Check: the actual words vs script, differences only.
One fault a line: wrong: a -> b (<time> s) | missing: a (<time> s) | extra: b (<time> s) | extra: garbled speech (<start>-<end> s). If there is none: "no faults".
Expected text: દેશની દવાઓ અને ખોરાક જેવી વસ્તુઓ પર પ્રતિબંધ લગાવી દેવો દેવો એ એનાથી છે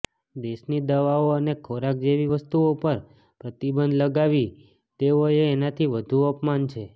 missing: દેવો (5.2 s)
extra: વધુ અપમાન (5.9 s)